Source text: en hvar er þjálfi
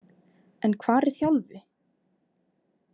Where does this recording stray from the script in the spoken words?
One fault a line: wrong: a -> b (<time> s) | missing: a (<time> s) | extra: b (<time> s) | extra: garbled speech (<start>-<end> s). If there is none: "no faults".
no faults